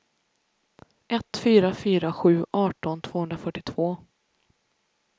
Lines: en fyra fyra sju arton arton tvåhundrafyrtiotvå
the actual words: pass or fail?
fail